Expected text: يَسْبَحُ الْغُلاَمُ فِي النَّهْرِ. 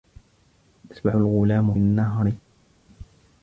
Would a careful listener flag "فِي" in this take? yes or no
yes